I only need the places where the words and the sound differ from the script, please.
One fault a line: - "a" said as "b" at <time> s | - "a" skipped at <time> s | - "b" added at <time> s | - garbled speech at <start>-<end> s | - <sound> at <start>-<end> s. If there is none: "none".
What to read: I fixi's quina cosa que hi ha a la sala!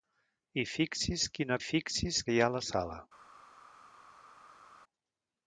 - "cosa" said as "fixi's" at 1.7 s